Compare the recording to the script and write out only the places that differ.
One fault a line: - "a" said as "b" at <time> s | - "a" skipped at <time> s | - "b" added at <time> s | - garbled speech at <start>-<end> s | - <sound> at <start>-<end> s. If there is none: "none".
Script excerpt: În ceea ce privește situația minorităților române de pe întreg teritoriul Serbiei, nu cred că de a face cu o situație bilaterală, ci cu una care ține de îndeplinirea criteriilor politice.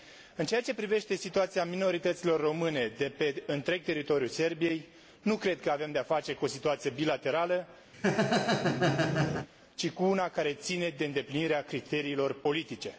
- "avem" added at 5.7 s
- laugh at 7.9-9.5 s